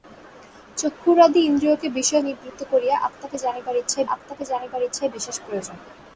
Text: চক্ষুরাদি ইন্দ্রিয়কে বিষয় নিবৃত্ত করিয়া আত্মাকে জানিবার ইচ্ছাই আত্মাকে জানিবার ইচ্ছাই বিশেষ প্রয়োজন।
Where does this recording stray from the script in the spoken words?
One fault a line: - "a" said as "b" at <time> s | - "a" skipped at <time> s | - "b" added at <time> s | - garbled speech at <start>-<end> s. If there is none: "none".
none